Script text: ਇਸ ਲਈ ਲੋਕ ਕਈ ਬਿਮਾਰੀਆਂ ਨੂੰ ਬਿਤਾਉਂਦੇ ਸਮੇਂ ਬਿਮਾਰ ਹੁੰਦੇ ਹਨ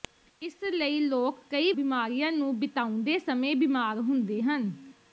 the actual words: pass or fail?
pass